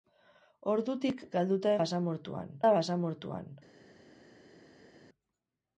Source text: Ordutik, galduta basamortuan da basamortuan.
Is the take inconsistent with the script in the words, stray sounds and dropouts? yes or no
no